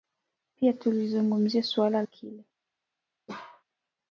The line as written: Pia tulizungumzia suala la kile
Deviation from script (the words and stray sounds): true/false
true